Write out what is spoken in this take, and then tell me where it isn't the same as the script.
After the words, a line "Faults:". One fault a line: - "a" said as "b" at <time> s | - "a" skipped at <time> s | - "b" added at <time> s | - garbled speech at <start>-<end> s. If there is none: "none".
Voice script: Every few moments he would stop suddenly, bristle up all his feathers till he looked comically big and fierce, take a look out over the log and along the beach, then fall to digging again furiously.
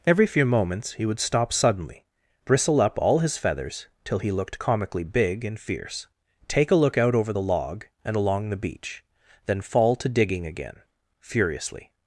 Every few moments he would stop suddenly, bristle up all his feathers till he looked comically big and fierce, take a look out over the log and along the beach, then fall to digging again furiously.
Faults:
none